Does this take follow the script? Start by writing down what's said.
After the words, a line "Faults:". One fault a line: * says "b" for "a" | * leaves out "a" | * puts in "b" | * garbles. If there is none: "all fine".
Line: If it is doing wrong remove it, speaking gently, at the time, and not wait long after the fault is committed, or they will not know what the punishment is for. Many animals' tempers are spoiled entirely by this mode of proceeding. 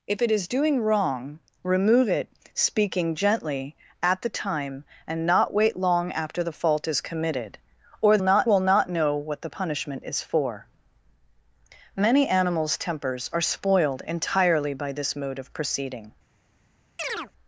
If it is doing wrong remove it, speaking gently, at the time, and not wait long after the fault is committed, or not will not know what the punishment is for. Many animals' tempers are spoiled entirely by this mode of proceeding.
Faults:
* says "not" for "they"